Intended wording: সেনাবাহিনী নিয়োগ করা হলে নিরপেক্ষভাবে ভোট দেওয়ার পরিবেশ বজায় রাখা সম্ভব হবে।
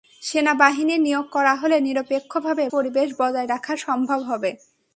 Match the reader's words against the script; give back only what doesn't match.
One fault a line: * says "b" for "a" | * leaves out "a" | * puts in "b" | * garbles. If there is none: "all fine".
* leaves out "ভোট দেওয়ার"